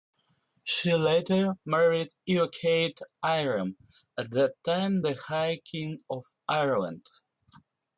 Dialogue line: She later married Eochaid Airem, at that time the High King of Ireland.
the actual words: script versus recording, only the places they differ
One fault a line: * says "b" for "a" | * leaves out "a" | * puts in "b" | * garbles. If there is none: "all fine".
all fine